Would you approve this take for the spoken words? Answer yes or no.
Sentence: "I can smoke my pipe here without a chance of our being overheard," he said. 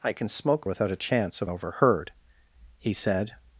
no